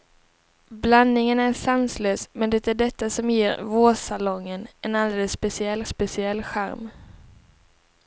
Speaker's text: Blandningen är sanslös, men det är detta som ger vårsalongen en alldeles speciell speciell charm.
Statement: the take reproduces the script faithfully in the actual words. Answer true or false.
true